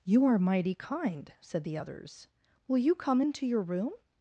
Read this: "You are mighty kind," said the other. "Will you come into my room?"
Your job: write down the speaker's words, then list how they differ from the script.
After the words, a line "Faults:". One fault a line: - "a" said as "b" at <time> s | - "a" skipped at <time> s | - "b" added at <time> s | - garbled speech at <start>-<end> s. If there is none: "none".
"You are mighty kind," said the others. "Will you come into your room?"
Faults:
- "other" said as "others" at 1.7 s
- "my" said as "your" at 3.5 s